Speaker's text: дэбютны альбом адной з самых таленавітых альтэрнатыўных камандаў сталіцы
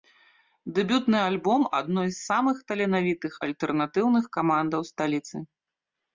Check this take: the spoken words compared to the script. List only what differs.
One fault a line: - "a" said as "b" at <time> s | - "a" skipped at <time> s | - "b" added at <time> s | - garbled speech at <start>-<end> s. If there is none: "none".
none